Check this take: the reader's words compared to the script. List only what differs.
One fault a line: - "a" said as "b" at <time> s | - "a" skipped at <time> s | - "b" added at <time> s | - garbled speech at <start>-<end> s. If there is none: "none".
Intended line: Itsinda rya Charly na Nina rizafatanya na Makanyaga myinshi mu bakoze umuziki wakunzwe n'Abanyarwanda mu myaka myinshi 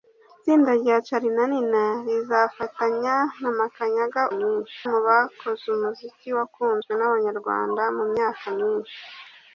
none